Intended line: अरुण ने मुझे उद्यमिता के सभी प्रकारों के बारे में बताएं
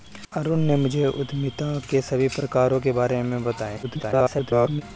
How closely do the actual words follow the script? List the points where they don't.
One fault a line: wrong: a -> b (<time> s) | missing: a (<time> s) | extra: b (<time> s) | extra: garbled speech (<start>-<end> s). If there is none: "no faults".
extra: garbled speech (3.8-4.8 s)